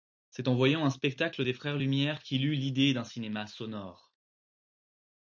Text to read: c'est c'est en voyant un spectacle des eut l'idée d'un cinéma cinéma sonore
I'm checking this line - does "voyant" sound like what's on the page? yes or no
yes